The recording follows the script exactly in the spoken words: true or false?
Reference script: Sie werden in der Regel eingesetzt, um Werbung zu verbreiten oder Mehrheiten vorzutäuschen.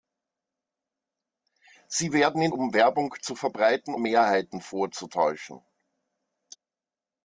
false